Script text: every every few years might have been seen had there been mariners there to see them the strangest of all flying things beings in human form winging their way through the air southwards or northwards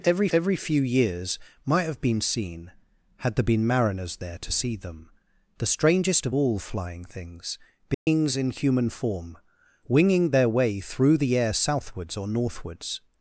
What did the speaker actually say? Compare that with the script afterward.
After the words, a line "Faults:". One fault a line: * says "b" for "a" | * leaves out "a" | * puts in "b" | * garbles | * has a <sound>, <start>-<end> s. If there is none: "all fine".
every every few years might have been seen had there been mariners there to see them the strangest of all flying things beings in human form winging their way through the air southwards or northwards
Faults:
* has a dropout, 7.9-8.1 s